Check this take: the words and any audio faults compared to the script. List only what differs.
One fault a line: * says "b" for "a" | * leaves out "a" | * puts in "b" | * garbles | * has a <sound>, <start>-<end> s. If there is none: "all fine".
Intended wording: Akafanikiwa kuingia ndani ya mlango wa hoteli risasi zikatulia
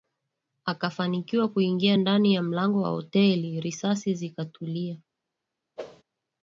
* has a whoosh, 5.8-6.0 s